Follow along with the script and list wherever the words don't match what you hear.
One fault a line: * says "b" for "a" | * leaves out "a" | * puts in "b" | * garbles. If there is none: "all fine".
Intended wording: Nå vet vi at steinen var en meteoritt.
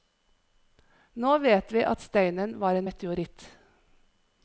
all fine